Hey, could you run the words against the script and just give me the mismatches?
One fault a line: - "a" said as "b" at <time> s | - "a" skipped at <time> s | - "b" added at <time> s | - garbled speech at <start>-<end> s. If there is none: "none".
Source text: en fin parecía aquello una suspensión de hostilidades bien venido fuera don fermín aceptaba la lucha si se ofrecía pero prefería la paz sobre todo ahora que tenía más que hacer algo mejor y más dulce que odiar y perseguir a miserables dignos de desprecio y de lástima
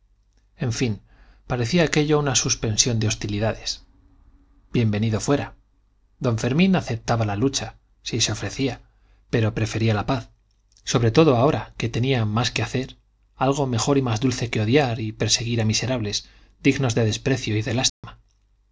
none